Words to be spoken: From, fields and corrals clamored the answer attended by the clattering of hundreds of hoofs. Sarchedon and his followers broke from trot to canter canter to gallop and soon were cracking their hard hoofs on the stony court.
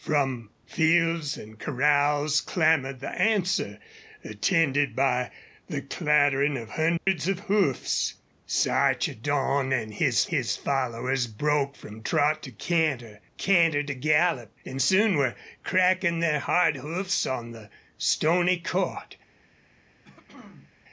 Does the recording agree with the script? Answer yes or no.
no